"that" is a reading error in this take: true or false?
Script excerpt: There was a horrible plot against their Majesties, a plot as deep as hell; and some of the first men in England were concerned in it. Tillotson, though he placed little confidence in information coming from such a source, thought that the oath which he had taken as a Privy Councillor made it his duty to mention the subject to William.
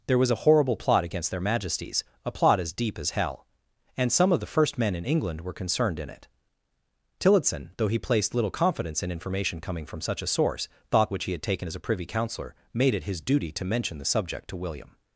true